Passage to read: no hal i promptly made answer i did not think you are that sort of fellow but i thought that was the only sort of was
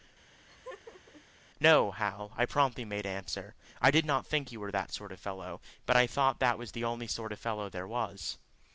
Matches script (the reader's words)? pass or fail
fail